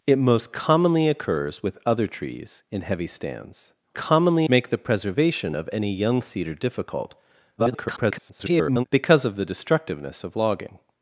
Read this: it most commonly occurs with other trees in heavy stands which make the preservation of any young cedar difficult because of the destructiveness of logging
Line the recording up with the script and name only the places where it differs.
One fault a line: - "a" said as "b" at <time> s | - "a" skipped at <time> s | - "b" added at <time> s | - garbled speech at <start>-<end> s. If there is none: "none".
- "which" said as "commonly" at 3.9 s
- garbled speech at 7.6-8.8 s